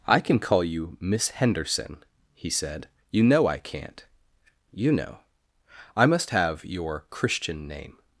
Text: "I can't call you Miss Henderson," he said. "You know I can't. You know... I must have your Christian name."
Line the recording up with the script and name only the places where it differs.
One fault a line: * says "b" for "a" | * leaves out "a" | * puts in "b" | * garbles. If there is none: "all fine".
* says "can" for "can't"